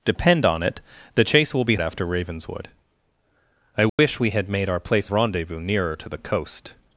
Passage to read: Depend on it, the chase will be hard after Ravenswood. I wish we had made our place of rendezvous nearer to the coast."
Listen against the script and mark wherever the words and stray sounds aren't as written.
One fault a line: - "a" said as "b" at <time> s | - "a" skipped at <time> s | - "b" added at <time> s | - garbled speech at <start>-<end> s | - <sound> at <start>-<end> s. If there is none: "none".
- "hard" skipped at 1.8 s
- dropout at 3.9-4.0 s
- "of" skipped at 5.1 s